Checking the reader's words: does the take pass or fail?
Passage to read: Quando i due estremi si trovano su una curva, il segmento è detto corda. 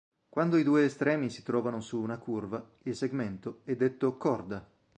pass